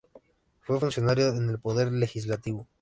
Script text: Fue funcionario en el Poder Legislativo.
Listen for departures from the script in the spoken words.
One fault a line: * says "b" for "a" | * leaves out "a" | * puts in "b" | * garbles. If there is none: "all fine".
all fine